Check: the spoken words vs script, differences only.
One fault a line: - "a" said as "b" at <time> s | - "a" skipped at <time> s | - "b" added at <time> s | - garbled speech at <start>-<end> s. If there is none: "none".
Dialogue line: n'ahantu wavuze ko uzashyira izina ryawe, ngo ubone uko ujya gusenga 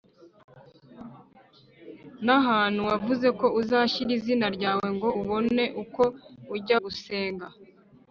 none